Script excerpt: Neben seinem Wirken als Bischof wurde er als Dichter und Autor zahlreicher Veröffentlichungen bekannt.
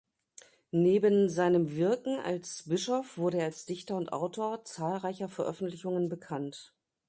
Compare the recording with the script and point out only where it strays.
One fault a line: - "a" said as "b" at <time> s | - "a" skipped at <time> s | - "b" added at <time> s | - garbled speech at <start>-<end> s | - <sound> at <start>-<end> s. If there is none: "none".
none